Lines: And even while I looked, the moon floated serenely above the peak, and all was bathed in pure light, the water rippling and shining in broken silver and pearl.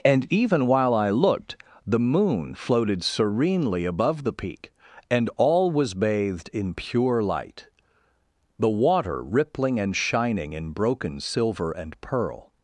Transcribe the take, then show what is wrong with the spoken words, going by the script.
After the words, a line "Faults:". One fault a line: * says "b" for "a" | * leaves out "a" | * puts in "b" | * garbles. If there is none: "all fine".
And even while I looked, the moon floated serenely above the peak, and all was bathed in pure light, the water rippling and shining in broken silver and pearl.
Faults:
all fine